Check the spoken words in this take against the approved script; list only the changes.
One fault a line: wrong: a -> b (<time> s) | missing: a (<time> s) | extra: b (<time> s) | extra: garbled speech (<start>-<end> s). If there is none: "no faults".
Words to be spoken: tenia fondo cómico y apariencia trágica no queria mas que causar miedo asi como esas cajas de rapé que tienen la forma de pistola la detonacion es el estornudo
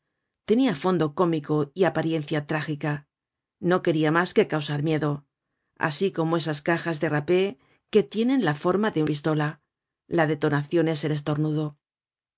no faults